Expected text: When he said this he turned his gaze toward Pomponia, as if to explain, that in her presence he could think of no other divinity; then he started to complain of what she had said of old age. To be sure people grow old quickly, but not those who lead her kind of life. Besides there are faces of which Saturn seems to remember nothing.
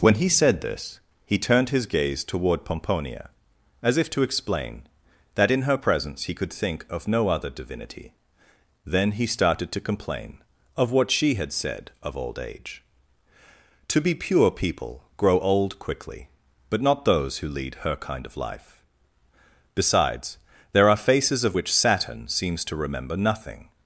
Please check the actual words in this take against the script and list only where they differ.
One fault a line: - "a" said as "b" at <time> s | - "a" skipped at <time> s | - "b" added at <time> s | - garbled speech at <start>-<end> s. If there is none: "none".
- "sure" said as "pure" at 14.1 s